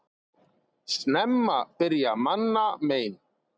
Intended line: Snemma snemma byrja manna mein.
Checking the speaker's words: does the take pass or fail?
fail